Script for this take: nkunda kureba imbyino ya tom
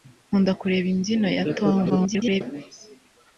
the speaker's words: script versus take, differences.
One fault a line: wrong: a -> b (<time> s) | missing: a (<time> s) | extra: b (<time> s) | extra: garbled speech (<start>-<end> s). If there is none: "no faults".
extra: garbled speech (1.9-2.4 s)